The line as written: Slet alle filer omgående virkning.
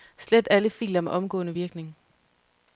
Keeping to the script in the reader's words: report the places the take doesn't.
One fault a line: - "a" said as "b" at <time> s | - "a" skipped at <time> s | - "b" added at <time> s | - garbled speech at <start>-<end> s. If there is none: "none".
- "med" added at 1.0 s